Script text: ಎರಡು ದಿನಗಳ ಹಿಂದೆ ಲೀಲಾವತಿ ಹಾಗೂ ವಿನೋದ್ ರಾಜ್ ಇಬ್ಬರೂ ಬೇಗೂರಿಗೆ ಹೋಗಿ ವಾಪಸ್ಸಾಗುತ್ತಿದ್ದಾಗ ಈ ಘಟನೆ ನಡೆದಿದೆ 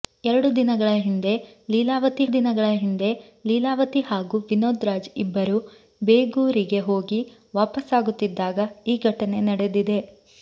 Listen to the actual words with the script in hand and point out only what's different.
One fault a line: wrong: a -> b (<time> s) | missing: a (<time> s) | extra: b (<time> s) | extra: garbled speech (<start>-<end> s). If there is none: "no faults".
extra: ದಿನಗಳ ಹಿಂದೆ ಲೀಲಾವತಿ (2.3 s)